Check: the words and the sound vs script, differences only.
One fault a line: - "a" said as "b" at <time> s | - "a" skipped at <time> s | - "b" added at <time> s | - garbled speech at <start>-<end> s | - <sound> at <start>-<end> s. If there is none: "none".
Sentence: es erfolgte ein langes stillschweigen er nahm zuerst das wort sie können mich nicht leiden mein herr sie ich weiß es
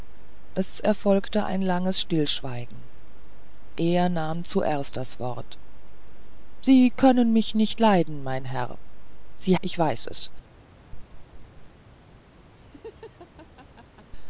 - laugh at 10.9-11.7 s
- laugh at 12.6-14.1 s